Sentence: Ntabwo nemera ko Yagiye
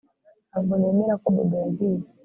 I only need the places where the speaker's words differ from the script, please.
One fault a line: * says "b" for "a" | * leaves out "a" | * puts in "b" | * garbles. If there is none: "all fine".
* puts in "Bobo"